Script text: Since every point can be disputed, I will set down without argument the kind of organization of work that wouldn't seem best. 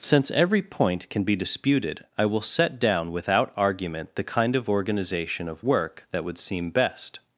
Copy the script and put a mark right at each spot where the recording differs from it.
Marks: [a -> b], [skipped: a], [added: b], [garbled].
Since every point can be disputed, I will set down without argument the kind of organization of work that [wouldn't -> would] seem best.